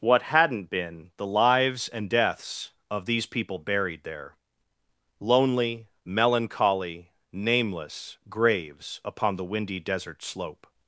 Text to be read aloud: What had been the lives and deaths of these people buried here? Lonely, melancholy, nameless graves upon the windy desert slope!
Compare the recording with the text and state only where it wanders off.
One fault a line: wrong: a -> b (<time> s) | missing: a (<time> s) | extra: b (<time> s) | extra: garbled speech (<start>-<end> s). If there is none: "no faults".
wrong: had -> hadn't (0.2 s)
wrong: here -> there (4.0 s)